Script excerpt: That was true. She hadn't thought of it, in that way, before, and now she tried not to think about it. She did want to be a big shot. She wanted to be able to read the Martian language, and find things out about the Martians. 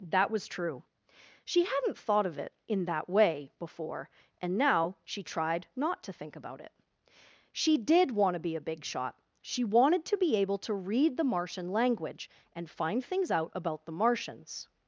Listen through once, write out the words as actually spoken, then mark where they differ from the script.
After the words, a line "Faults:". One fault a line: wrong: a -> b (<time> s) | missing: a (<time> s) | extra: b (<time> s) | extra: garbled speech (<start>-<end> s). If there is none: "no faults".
That was true. She hadn't thought of it, in that way, before, and now she tried not to think about it. She did want to be a big shot. She wanted to be able to read the Martian language, and find things out about the Martians.
Faults:
no faults